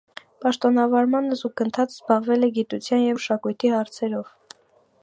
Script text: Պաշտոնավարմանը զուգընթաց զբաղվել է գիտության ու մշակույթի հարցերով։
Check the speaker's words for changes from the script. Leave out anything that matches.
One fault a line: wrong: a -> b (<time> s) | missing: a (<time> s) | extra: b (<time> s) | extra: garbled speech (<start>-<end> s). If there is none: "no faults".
missing: ու (3.0 s)